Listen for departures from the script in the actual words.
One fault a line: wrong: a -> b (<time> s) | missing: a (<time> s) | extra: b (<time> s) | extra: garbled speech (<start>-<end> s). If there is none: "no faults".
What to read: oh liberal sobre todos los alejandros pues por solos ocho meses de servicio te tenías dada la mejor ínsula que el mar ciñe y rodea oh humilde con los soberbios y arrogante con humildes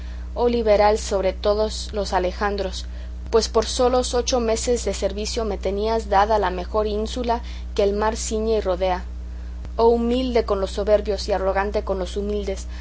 wrong: te -> me (5.4 s)
extra: los (12.0 s)